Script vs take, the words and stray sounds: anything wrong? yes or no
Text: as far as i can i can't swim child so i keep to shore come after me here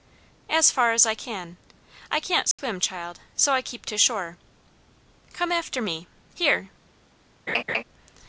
yes